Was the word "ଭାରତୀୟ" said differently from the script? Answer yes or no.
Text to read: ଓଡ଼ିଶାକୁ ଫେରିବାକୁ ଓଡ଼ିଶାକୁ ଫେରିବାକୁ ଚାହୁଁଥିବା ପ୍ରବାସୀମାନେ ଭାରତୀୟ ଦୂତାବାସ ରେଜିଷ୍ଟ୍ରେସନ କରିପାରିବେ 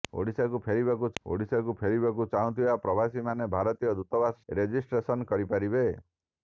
no